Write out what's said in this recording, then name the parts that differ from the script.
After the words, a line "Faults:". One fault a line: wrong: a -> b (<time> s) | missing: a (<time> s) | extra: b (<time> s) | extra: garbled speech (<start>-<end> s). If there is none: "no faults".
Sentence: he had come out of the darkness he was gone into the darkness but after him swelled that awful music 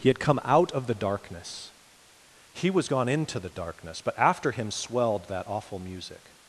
he had come out of the darkness he was gone into the darkness but after him swelled that awful music
Faults:
no faults